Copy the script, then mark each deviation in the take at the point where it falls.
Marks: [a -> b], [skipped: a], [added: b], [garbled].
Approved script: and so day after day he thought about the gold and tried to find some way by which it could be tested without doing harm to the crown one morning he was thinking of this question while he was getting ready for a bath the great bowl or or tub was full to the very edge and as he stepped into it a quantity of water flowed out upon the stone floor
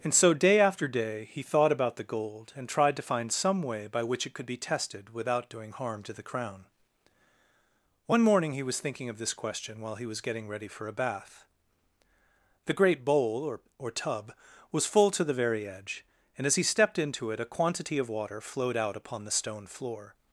and so day after day he thought about the gold and tried to find some way by which it could be tested without doing harm to the crown one morning he was thinking of this question while he was getting ready for a bath the great bowl or or tub was full to the very edge and as he stepped into it a quantity of water flowed out upon the stone floor